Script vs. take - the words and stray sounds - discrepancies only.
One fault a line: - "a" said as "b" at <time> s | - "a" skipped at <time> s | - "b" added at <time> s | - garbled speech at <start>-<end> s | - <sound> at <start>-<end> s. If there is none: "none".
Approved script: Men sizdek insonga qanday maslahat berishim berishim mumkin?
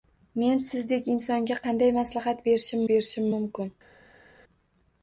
none